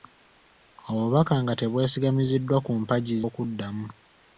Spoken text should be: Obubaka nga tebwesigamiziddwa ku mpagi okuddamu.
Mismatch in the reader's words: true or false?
false